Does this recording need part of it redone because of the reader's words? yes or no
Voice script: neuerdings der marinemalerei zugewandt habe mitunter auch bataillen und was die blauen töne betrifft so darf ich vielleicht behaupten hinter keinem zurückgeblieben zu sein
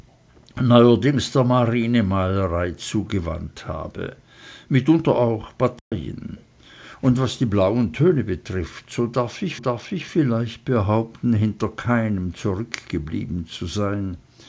yes